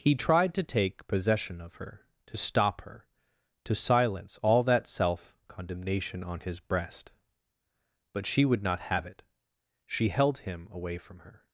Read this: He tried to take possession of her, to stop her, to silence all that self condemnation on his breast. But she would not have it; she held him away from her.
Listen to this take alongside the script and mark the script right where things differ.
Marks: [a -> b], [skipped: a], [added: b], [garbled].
He tried to take possession of her, to stop her, to silence all that self condemnation on his breast. But she would not have it; she held him away from her.